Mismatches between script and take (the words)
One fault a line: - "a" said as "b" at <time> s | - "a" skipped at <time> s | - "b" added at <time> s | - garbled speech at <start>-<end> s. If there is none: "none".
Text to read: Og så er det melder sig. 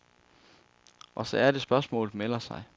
- "spørgsmålet" added at 1.6 s